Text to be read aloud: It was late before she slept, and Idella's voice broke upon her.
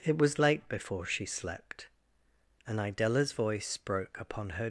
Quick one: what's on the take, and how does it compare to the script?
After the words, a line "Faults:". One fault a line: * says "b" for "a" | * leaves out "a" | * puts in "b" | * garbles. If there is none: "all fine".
It was late before she slept, and Idella's voice broke upon her.
Faults:
all fine